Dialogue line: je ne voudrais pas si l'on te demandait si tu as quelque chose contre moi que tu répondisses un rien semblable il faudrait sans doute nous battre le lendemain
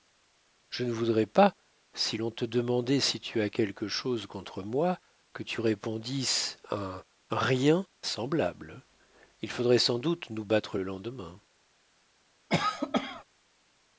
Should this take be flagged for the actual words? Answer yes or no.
no